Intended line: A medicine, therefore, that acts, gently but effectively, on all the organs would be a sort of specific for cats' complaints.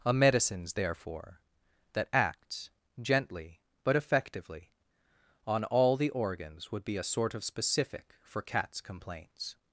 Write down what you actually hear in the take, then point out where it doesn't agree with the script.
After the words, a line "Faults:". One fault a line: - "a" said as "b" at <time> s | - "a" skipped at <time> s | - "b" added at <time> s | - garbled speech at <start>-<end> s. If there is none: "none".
A medicines, therefore, that acts, gently but effectively, on all the organs would be a sort of specific for cats' complaints.
Faults:
- "medicine" said as "medicines" at 0.1 s